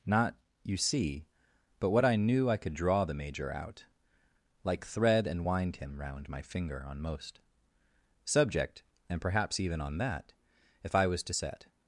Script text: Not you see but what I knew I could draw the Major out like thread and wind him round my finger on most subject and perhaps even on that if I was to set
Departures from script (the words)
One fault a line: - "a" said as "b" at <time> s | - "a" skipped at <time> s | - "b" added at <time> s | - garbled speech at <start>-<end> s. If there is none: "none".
none